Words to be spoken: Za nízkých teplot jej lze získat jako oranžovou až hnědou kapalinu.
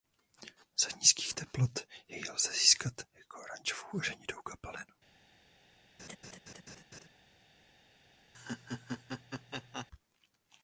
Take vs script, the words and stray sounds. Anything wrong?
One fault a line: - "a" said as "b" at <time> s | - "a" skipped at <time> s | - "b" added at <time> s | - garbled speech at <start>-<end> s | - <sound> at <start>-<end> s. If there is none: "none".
- laugh at 6.0-7.1 s
- laugh at 8.3-9.9 s